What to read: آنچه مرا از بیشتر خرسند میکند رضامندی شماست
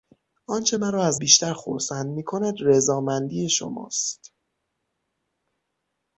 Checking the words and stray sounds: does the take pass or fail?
pass